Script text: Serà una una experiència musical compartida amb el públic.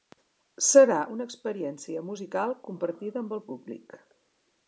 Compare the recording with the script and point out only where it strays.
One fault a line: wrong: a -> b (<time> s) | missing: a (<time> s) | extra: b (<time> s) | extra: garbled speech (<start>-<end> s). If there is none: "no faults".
missing: una (1.3 s)